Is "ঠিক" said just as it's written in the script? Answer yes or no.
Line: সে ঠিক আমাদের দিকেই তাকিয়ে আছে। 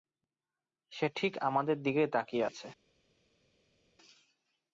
yes